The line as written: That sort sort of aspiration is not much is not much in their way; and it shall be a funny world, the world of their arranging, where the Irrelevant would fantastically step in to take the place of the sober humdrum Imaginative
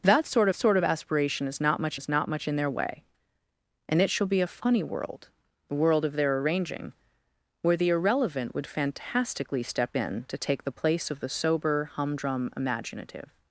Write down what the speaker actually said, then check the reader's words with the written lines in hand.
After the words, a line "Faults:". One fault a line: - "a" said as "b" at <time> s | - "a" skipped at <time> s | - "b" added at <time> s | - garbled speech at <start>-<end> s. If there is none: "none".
That sort sort of aspiration is not much is not much in their way; and it shall be a funny world, the world of their arranging, where the Irrelevant would fantastically step in to take the place of the sober humdrum Imaginative
Faults:
none